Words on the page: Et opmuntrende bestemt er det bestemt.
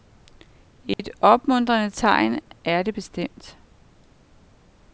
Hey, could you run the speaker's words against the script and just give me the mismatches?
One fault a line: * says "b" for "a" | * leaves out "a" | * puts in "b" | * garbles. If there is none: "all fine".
* says "tegn" for "bestemt"